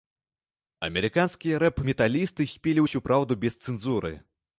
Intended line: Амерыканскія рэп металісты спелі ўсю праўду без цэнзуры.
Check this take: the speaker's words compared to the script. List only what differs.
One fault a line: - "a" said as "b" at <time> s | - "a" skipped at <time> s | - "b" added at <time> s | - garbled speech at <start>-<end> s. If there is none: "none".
none